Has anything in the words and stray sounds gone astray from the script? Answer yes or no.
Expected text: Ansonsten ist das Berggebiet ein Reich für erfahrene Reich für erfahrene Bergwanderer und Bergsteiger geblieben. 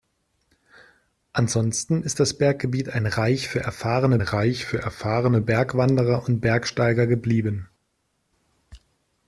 no